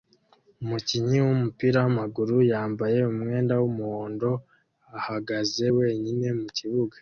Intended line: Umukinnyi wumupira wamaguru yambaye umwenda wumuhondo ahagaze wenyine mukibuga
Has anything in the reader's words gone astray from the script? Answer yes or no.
no